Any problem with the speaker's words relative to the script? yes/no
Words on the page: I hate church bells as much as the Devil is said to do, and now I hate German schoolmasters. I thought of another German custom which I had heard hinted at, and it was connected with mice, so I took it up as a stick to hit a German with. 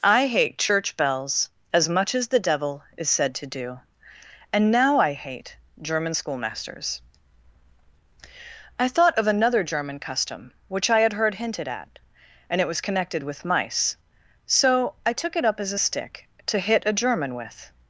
no